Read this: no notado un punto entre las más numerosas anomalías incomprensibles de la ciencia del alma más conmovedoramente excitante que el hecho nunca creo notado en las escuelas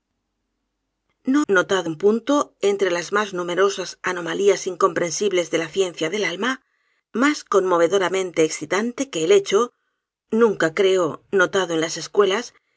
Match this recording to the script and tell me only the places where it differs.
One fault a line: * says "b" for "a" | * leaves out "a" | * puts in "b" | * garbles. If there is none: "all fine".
all fine